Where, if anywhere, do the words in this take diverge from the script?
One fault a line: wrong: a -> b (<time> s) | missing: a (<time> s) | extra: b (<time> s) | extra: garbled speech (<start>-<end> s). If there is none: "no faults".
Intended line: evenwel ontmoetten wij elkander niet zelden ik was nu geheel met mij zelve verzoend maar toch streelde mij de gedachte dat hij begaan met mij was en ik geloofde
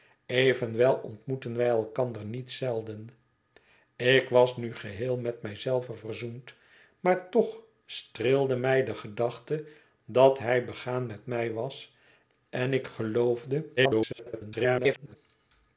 extra: garbled speech (13.8-15.2 s)